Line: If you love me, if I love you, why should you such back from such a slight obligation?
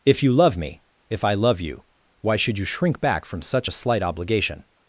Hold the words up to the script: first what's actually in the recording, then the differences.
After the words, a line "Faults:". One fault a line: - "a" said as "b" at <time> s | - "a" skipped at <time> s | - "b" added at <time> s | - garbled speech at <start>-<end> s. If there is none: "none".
If you love me, if I love you, why should you shrink back from such a slight obligation?
Faults:
- "such" said as "shrink" at 2.6 s